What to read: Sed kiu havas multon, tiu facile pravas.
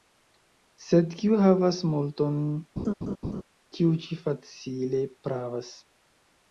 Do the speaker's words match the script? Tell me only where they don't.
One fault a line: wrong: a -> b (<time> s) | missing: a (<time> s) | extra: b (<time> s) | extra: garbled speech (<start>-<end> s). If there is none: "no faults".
extra: ĉi (4.1 s)